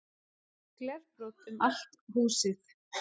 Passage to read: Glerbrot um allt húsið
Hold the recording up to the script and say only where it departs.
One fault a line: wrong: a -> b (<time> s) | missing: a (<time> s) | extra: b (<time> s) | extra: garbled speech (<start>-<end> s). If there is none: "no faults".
no faults